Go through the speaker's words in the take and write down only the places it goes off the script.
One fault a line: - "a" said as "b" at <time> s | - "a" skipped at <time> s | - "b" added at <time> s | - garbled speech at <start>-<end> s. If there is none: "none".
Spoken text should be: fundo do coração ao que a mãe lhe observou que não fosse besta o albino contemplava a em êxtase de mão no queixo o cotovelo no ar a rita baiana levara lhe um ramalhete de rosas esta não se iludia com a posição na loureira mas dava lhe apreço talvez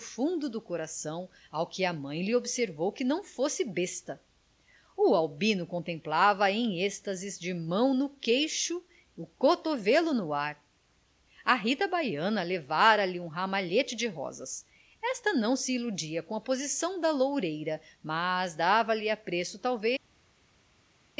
- "na" said as "da" at 17.0 s